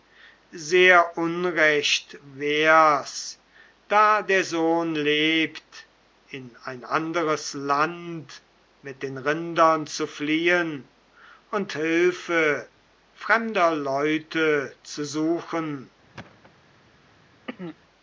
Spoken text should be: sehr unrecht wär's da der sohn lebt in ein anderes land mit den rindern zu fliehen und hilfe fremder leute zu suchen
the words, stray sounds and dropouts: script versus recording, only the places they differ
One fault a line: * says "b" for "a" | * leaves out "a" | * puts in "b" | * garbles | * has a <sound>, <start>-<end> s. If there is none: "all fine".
* has a thud, 16.1-16.5 s
* has a throat clearing, 17.5-17.8 s